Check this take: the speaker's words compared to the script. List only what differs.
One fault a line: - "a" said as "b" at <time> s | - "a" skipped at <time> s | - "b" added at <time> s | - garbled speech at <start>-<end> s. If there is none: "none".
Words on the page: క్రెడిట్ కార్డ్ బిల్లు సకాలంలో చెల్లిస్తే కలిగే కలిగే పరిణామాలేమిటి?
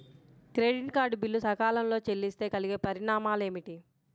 - "కలిగే" skipped at 2.7 s